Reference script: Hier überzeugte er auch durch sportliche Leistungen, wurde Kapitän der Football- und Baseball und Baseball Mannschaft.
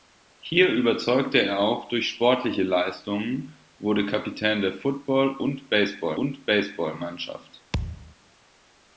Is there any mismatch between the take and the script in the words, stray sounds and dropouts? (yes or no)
yes